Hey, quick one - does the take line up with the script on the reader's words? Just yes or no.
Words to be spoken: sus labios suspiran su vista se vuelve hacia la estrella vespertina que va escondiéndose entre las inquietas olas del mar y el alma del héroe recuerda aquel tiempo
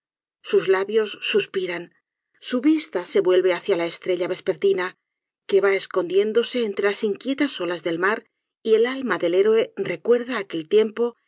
yes